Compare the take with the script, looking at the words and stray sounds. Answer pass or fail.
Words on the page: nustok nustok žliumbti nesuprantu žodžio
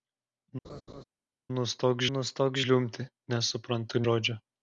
fail